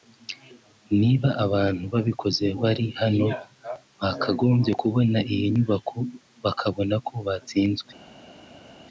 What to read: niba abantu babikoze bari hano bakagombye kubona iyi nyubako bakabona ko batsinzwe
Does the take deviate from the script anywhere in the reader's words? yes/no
no